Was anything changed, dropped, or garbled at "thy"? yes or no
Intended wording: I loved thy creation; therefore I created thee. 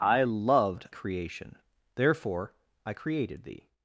yes